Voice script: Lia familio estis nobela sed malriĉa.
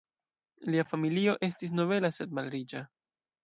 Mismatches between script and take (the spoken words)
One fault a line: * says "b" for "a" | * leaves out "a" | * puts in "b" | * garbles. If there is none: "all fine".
all fine